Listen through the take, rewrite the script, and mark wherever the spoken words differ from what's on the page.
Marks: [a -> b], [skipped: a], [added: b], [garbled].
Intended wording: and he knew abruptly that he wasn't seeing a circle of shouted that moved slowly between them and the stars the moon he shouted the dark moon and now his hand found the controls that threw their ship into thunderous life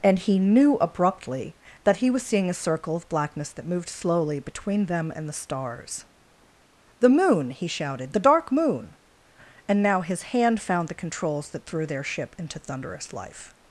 and he knew abruptly that he [wasn't -> was] seeing a circle of [shouted -> blackness] that moved slowly between them and the stars the moon he shouted the dark moon and now his hand found the controls that threw their ship into thunderous life